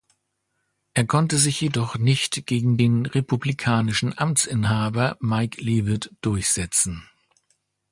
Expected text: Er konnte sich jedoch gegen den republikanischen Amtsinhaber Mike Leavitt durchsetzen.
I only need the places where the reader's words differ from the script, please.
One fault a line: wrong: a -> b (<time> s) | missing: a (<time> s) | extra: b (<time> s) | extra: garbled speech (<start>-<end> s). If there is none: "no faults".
extra: nicht (1.9 s)